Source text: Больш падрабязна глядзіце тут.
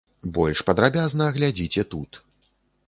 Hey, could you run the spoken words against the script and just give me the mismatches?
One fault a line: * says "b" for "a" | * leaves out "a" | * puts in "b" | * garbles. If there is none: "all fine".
all fine